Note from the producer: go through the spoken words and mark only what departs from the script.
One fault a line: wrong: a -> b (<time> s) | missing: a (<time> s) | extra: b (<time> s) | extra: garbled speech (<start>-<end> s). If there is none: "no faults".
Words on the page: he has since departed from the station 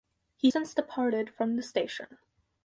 missing: has (0.5 s)